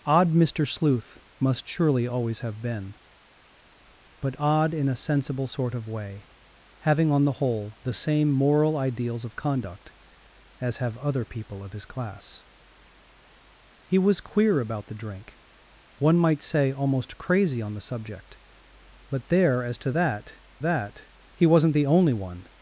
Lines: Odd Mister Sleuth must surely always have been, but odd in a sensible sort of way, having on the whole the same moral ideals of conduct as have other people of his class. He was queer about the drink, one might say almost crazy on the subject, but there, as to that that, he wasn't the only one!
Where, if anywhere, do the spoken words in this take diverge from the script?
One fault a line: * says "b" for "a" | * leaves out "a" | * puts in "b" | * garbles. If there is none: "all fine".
all fine